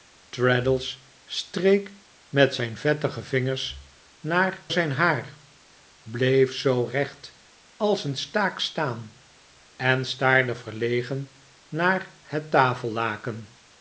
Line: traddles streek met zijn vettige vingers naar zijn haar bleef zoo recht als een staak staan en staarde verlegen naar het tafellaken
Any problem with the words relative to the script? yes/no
no